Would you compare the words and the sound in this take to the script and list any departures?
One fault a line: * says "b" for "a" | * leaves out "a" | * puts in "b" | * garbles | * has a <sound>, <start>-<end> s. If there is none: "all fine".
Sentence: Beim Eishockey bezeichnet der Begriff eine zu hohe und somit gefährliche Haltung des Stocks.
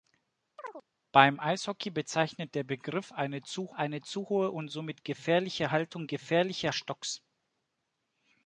* has a chirp, 0.6-0.8 s
* puts in "eine zu"
* says "gefährliche" for "des"